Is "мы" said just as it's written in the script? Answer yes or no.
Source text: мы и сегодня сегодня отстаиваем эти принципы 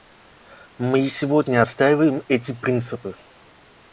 yes